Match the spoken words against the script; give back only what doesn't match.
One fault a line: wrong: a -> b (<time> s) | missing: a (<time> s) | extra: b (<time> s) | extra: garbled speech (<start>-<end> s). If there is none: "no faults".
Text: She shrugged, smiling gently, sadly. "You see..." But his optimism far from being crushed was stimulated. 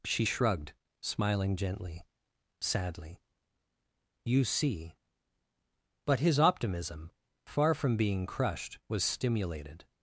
no faults